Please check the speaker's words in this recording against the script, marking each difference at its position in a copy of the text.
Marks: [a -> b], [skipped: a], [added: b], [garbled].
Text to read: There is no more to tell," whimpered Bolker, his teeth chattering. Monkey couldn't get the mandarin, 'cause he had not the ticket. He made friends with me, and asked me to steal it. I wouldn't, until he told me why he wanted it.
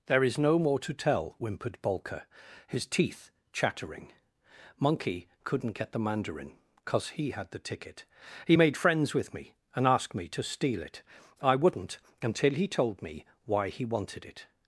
There is no more to tell," whimpered Bolker, his teeth chattering. Monkey couldn't get the mandarin, 'cause he had [skipped: not] the ticket. He made friends with me, and asked me to steal it. I wouldn't, until he told me why he wanted it.